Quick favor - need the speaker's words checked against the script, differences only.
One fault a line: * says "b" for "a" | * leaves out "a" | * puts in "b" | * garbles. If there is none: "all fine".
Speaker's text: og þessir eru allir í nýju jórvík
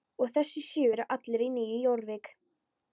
* puts in "sjö"